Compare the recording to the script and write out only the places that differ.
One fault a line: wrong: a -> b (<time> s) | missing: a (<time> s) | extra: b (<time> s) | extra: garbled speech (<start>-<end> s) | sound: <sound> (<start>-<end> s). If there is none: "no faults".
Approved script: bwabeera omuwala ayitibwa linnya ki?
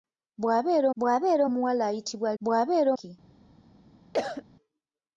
extra: bwabeera (1.0 s)
wrong: linnya -> bwabeera (2.4 s)
sound: cough (4.1-4.4 s)